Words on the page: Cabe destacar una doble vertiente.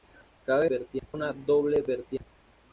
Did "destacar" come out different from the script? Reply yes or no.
yes